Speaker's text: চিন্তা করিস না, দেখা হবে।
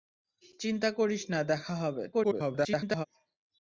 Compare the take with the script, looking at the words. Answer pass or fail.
fail